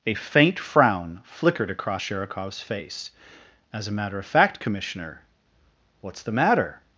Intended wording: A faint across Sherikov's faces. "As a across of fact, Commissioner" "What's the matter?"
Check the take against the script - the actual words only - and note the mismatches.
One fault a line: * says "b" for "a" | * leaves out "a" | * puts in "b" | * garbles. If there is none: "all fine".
* puts in "frown flickered"
* says "face" for "faces"
* says "matter" for "across"